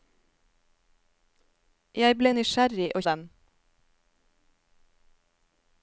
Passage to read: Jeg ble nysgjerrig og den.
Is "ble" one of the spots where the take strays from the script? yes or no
no